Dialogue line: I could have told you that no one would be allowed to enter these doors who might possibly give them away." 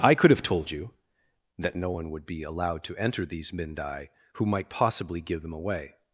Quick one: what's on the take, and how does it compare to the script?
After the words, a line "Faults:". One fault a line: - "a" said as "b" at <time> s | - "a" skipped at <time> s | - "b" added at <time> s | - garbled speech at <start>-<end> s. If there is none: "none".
I could have told you that no one would be allowed to enter these mindai who might possibly give them away."
Faults:
- "doors" said as "mindai" at 3.5 s